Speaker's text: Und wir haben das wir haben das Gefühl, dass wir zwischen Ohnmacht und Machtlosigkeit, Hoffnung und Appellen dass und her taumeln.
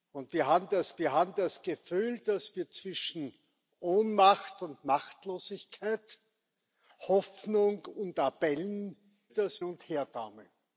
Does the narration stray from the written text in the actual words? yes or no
no